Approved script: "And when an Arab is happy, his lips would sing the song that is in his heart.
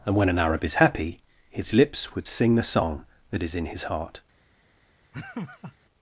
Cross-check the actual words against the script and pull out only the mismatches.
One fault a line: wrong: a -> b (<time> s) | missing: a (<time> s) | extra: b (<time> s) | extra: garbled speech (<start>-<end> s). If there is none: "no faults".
no faults